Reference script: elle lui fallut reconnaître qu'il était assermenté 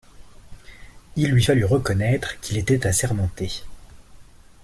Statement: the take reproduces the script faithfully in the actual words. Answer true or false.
false